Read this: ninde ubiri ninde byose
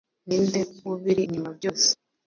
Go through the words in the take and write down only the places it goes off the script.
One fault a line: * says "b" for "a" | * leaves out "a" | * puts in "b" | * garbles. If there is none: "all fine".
* says "inyuma" for "ninde"